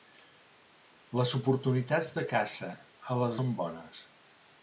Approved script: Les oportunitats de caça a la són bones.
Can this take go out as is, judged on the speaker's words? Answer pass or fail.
pass